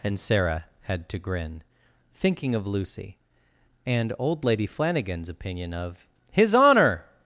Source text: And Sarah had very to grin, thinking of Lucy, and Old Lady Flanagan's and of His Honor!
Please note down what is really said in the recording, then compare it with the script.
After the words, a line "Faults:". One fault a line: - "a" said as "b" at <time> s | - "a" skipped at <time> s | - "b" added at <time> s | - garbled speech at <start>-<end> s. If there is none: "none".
And Sarah had to grin, thinking of Lucy, and Old Lady Flanagan's opinion of His Honor!
Faults:
- "very" skipped at 1.1 s
- "and" said as "opinion" at 5.3 s